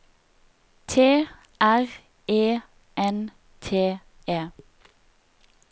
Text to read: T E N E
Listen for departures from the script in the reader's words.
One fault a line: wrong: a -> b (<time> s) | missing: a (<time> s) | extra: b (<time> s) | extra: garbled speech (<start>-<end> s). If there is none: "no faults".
extra: R (1.6 s)
extra: T (3.6 s)